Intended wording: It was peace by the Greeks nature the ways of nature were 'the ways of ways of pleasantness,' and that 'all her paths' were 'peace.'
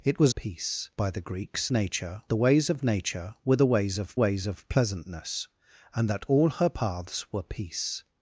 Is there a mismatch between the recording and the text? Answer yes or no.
no